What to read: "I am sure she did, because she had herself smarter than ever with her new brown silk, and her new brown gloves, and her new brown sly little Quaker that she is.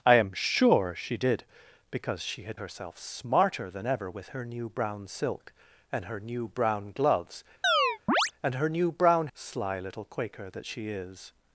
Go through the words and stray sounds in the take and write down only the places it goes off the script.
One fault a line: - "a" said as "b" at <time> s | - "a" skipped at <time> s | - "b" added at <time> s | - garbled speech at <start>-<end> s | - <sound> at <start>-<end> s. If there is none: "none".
- chirp at 7.6-8.3 s